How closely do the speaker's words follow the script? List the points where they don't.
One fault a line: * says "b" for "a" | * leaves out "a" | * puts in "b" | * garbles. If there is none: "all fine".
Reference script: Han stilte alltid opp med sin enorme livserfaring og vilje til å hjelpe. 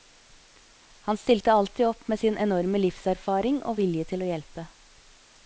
all fine